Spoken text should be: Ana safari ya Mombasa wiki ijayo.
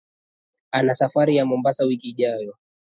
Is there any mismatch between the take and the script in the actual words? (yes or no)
no